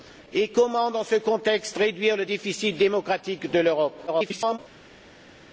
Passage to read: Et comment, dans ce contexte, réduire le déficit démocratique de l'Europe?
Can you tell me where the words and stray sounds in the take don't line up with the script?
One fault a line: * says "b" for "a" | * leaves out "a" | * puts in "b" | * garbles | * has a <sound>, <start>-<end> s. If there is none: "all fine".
* garbles